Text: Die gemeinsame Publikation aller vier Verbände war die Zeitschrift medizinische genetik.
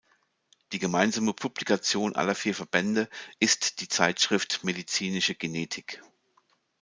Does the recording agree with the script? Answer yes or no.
no